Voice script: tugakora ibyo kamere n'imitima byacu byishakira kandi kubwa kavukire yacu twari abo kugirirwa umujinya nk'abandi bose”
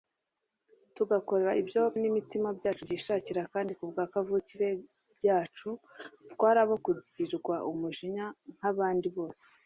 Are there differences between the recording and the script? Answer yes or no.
yes